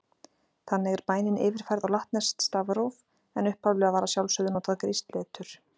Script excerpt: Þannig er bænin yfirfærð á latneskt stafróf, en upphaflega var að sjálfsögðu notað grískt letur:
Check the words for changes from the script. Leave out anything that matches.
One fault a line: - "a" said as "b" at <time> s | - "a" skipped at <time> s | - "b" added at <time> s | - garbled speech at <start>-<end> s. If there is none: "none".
none